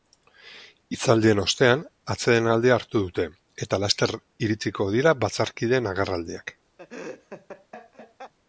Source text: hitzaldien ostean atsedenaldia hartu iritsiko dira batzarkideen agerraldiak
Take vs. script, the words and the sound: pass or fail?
fail